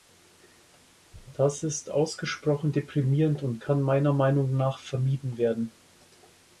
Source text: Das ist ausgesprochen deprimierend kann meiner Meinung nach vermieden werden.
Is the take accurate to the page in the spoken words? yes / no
no